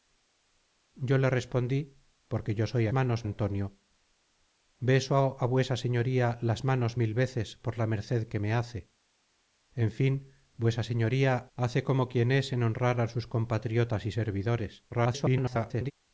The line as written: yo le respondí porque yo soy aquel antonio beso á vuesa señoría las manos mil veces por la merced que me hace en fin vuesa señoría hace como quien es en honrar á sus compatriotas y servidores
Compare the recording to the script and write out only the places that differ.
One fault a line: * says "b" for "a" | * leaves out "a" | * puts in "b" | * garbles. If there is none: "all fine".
* says "manos" for "aquel"
* garbles